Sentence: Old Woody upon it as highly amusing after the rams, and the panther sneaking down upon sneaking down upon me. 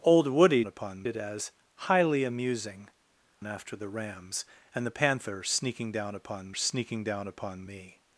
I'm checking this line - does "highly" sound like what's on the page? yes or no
yes